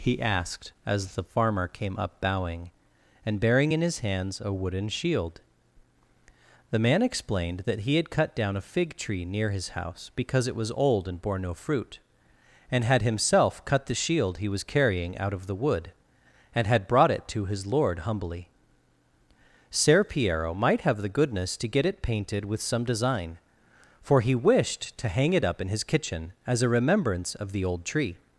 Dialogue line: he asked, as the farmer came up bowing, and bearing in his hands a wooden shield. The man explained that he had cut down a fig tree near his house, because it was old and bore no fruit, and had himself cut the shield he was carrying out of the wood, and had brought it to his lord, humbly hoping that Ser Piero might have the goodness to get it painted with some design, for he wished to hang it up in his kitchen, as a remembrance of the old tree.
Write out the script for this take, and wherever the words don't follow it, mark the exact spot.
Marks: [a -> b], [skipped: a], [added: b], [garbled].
he asked, as the farmer came up bowing, and bearing in his hands a wooden shield. The man explained that he had cut down a fig tree near his house, because it was old and bore no fruit, and had himself cut the shield he was carrying out of the wood, and had brought it to his lord, humbly [skipped: hoping that] Ser Piero might have the goodness to get it painted with some design, for he wished to hang it up in his kitchen, as a remembrance of the old tree.